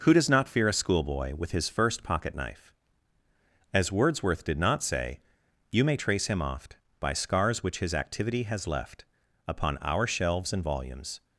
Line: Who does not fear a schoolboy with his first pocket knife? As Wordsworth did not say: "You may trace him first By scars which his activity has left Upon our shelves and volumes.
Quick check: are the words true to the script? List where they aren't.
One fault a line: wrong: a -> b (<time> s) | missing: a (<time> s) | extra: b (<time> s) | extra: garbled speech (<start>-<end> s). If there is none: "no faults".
wrong: first -> oft (6.4 s)